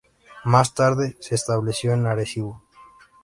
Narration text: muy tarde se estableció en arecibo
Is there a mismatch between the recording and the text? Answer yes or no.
yes